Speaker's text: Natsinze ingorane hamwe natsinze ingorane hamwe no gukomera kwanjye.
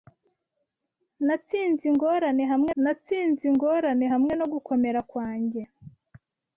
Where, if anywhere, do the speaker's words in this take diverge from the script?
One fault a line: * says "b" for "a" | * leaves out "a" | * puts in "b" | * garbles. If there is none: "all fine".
all fine